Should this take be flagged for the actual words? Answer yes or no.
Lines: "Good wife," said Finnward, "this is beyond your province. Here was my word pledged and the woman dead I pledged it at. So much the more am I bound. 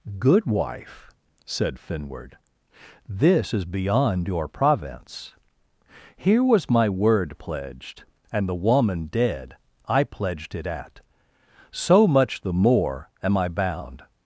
no